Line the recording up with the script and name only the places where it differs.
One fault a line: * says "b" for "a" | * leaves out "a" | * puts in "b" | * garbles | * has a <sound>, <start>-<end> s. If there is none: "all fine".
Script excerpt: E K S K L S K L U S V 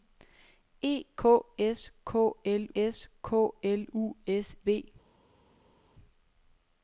all fine